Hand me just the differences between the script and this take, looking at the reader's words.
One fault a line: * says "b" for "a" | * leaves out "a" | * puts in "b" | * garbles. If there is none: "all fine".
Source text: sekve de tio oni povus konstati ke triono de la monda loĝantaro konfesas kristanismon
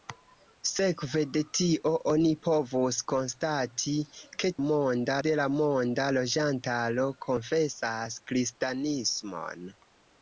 * says "monda" for "triono"